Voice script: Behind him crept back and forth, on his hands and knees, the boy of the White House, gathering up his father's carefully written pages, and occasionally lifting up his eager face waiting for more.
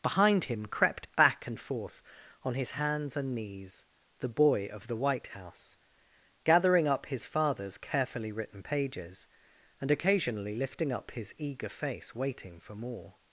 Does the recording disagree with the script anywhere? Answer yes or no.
no